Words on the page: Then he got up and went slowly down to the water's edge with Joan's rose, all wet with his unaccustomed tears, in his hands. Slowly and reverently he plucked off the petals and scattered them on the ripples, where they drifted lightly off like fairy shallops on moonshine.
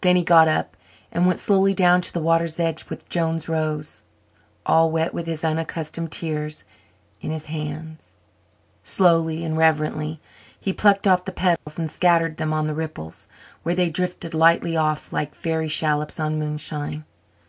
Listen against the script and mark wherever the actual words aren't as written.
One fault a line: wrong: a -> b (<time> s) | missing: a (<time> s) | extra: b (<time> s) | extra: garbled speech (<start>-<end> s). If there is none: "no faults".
no faults